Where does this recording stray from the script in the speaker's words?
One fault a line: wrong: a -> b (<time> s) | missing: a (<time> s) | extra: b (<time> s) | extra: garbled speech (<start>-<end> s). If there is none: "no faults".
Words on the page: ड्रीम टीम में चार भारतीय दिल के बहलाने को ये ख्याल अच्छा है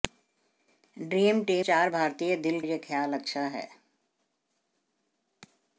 missing: में (1.6 s)
missing: के बहलाने को (2.6 s)